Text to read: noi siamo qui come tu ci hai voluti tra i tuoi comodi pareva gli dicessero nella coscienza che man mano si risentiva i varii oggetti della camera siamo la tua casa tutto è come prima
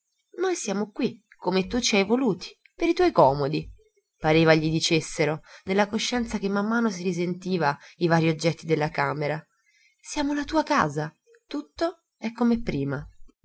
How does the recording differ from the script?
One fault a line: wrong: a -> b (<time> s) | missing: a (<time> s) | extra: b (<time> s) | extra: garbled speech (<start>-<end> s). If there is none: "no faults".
wrong: tra -> per (2.7 s)